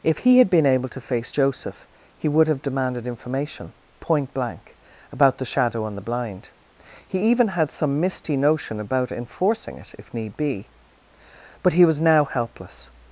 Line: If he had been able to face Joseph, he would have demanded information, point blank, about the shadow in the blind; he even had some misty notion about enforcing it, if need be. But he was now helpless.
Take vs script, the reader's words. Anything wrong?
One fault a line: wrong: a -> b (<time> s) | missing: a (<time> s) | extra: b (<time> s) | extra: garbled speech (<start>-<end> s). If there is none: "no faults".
wrong: in -> on (5.8 s)